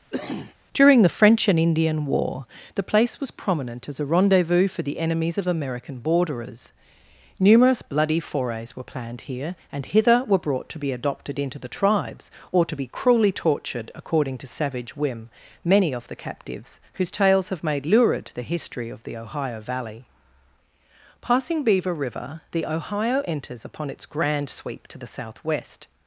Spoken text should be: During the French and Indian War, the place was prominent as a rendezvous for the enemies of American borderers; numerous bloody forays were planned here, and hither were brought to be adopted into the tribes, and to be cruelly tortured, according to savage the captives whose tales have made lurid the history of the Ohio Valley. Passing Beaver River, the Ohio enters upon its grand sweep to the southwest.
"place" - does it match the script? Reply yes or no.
yes